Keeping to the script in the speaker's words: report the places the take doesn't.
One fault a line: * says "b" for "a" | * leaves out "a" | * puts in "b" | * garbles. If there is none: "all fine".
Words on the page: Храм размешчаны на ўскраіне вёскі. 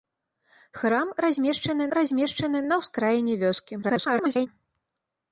* puts in "размешчаны"
* garbles